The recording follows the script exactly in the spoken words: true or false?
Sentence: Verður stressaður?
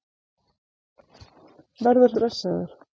true